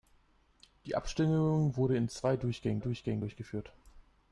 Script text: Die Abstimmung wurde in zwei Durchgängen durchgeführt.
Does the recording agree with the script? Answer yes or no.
no